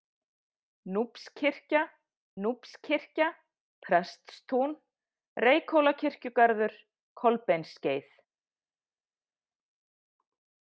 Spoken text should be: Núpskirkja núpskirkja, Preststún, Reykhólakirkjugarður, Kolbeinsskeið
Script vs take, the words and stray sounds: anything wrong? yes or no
no